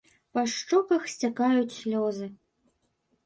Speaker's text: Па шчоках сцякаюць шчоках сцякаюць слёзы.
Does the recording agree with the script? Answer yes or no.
no